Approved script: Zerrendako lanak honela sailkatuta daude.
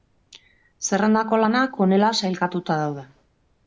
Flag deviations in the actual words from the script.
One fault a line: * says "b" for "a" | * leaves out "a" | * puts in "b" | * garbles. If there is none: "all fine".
all fine